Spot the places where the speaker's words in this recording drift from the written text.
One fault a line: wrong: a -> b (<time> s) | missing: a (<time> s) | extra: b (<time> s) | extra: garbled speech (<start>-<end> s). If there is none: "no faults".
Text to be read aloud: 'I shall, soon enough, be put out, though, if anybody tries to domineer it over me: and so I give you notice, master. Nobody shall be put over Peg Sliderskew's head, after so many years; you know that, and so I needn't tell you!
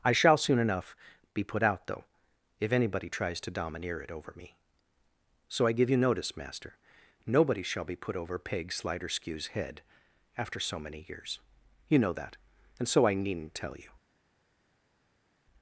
missing: and (4.5 s)